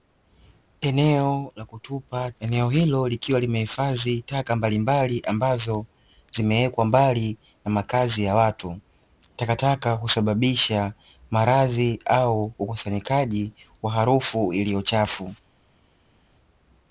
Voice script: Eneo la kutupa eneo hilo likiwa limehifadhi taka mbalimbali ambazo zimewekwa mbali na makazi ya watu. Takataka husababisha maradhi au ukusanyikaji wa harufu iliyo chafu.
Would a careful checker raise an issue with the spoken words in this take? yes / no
no